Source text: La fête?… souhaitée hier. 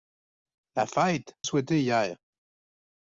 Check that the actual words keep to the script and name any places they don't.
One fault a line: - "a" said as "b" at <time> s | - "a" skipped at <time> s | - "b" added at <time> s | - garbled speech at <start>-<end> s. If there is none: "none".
none